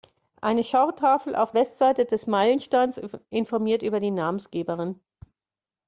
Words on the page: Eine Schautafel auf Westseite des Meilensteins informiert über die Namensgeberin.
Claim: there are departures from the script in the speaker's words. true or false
false